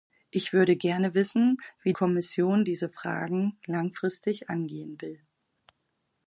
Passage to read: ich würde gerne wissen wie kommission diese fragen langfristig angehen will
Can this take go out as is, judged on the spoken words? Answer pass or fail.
pass